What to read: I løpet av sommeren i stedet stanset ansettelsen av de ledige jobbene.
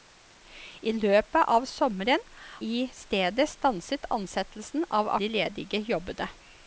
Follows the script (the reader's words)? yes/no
yes